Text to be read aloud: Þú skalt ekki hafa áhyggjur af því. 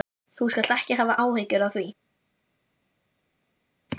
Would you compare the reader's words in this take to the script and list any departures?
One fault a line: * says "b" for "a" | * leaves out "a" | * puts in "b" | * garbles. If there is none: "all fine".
all fine